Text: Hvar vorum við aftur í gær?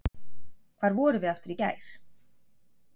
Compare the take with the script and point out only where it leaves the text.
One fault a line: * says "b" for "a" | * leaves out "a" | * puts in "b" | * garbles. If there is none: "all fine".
all fine